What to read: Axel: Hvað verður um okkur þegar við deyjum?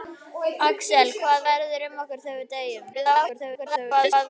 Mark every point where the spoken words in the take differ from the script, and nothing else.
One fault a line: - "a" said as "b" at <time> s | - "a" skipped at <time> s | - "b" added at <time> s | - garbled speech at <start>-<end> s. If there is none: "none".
- garbled speech at 2.9-4.3 s